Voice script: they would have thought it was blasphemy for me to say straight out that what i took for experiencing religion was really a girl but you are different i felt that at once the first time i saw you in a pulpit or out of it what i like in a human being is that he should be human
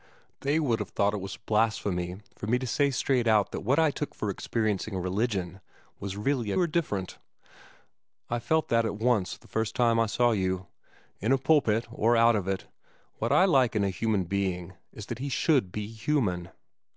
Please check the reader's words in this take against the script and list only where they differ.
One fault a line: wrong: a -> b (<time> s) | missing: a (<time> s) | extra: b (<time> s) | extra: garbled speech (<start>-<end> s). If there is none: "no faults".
missing: girl but you (6.6 s)